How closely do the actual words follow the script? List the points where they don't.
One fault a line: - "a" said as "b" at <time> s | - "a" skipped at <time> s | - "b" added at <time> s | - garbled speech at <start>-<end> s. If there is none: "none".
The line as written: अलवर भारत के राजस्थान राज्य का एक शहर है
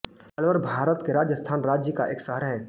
none